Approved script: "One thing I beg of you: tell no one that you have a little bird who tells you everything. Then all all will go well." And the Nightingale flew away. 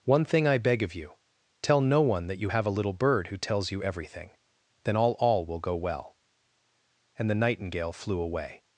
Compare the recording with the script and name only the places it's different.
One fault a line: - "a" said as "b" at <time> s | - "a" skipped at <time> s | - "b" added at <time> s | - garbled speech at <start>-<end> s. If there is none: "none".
none